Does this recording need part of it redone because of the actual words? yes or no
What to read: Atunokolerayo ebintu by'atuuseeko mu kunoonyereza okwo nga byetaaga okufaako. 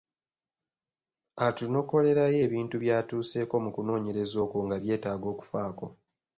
no